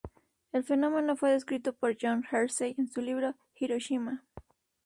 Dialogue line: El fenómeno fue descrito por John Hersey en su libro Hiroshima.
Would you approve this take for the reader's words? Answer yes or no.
yes